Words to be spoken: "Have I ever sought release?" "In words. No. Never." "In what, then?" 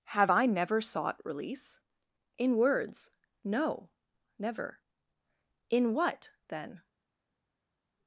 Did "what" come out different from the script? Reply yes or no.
no